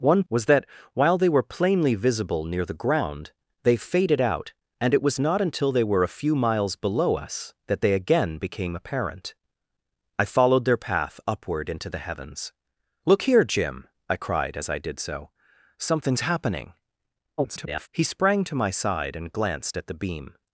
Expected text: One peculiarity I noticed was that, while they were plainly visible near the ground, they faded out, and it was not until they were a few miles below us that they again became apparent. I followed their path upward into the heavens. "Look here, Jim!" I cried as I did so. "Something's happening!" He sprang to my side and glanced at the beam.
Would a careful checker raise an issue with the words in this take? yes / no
yes